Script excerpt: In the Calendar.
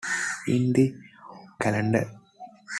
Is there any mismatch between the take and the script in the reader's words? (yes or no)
no